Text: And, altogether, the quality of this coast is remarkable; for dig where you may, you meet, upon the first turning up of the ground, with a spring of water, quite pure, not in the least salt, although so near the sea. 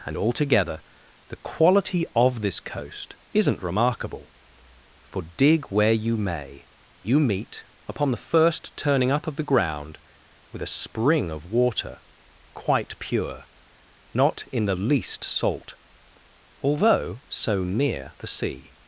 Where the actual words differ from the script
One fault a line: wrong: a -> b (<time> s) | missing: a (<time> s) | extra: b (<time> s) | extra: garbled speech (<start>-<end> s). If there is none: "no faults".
wrong: is -> isn't (3.3 s)